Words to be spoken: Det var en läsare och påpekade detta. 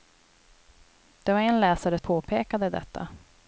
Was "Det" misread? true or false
false